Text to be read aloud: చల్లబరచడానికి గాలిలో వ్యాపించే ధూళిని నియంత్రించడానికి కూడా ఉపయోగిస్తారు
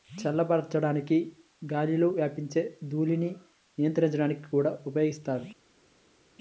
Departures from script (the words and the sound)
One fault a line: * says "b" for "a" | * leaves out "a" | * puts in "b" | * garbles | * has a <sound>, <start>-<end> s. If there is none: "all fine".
all fine